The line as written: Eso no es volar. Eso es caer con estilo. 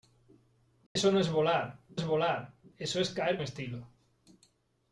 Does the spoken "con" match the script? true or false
false